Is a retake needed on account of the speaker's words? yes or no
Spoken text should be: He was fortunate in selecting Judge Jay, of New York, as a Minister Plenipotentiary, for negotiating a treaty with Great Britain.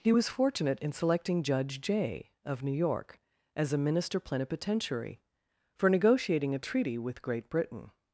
no